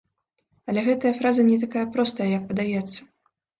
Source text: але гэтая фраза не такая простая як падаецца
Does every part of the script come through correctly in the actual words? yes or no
yes